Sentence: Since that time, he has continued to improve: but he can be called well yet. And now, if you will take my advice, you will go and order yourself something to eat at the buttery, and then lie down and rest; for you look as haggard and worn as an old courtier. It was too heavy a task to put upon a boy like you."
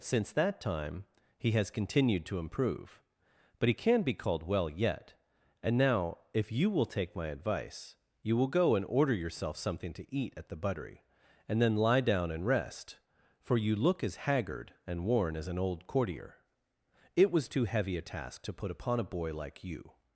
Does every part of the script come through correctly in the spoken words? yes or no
yes